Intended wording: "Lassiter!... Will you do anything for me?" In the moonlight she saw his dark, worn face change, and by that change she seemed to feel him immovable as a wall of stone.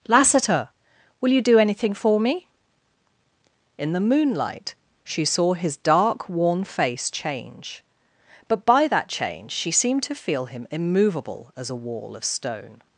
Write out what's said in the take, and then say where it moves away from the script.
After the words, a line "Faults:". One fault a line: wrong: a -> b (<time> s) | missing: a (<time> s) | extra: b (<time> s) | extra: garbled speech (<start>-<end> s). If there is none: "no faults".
"Lassiter!... Will you do anything for me?" In the moonlight she saw his dark, worn face change, but by that change she seemed to feel him immovable as a wall of stone.
Faults:
wrong: and -> but (8.5 s)